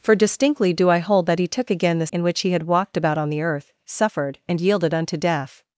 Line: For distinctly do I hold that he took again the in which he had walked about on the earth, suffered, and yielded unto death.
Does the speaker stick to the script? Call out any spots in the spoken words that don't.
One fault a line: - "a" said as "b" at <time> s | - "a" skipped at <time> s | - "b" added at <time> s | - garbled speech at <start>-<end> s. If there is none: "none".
none